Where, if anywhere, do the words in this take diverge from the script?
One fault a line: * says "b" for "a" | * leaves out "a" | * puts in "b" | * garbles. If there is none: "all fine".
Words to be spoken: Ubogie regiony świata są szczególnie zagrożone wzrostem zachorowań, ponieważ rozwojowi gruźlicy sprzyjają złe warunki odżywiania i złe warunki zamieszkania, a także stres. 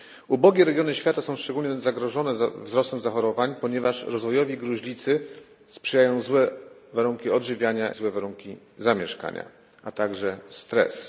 * leaves out "i"